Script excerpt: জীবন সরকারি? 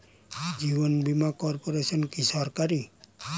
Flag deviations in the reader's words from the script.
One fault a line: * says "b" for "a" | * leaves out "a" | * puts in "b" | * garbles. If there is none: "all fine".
* puts in "বীমা কর্পোরেশন কি"